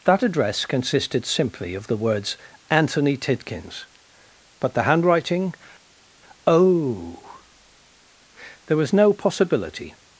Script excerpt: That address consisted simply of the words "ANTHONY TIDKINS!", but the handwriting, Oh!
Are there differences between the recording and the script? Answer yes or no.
yes